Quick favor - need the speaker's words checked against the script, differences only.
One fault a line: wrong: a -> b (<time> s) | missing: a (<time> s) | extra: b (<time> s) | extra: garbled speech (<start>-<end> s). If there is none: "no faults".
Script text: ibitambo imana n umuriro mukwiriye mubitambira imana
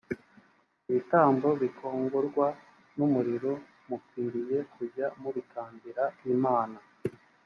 wrong: imana -> bikongorwa (1.6 s)
extra: kujya (4.7 s)